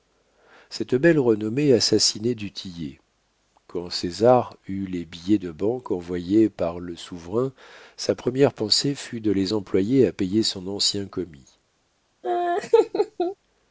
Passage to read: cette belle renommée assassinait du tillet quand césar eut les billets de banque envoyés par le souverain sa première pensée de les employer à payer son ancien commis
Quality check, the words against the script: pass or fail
fail